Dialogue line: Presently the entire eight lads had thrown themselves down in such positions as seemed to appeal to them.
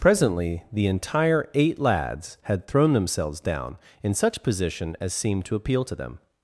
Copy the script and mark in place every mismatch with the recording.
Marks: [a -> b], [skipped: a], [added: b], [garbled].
Presently the entire eight lads had thrown themselves down in such [positions -> position] as seemed to appeal to them.